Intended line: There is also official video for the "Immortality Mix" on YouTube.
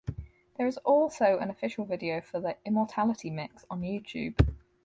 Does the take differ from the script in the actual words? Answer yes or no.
yes